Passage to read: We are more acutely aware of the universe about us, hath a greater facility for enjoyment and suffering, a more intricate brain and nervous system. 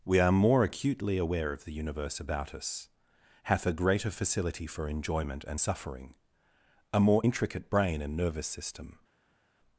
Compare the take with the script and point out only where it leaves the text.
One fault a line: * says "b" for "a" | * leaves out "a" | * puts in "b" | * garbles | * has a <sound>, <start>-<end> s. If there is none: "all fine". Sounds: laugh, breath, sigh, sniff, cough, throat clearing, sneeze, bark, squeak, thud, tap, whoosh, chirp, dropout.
all fine